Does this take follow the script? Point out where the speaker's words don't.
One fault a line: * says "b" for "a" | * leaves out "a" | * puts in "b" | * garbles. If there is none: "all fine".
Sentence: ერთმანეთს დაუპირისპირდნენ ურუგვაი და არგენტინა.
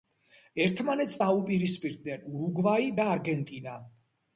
all fine